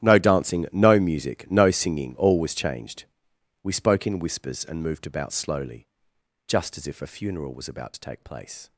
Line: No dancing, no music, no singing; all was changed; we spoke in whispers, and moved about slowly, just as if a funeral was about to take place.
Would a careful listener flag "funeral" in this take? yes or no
no